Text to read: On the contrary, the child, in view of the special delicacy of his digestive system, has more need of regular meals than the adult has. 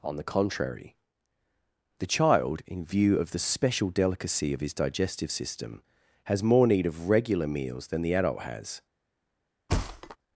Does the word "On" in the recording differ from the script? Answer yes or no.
no